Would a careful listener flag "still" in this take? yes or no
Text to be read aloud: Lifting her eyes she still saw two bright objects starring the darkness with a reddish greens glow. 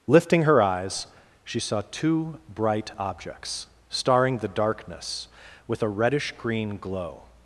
yes